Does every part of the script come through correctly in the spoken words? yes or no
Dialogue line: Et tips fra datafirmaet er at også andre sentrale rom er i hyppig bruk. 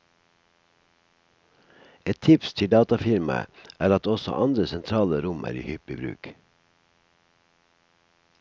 no